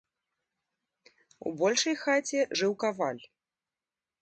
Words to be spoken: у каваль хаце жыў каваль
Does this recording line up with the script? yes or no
no